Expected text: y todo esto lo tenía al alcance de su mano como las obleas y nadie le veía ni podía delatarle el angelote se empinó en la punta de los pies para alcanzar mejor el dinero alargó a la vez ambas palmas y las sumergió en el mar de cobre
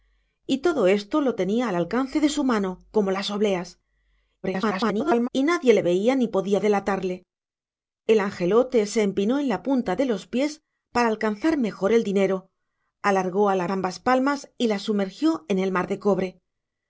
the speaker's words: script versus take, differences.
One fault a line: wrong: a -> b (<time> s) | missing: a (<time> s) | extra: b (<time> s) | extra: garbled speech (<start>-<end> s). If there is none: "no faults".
extra: garbled speech (4.4-5.3 s)
missing: vez (13.7 s)